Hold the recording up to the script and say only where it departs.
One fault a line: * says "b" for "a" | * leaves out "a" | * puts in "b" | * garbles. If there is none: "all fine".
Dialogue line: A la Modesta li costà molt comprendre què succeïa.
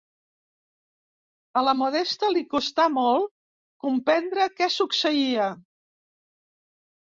all fine